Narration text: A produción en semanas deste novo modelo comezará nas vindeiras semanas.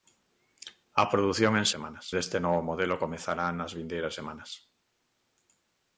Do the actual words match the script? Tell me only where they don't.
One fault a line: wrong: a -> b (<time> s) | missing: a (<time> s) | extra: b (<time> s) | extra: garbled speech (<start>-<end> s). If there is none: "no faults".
no faults